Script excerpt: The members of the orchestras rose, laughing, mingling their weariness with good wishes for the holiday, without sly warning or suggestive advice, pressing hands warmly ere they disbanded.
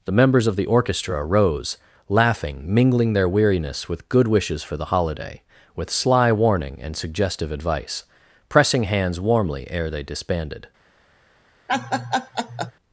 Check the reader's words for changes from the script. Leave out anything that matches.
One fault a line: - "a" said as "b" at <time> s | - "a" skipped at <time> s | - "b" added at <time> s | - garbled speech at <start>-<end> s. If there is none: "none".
- "orchestras" said as "orchestra" at 0.7 s
- "without" said as "with" at 5.8 s
- "or" said as "and" at 6.8 s